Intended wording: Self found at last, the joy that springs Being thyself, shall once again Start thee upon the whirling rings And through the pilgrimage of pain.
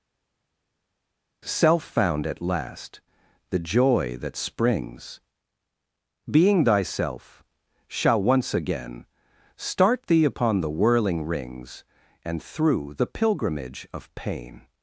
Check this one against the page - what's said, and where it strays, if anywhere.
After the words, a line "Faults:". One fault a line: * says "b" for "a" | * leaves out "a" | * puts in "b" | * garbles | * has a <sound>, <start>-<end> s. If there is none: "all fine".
Self found at last, the joy that springs Being thyself, shall once again Start thee upon the whirling rings And through the pilgrimage of pain.
Faults:
all fine